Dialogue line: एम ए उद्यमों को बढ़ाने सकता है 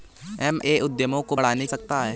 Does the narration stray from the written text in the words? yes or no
no